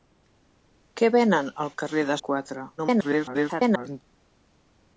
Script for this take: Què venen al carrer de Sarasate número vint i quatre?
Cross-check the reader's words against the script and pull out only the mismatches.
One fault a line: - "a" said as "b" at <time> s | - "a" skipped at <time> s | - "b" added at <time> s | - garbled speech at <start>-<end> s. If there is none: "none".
- "Sarasate número vint" skipped at 2.2 s
- garbled speech at 2.8-4.0 s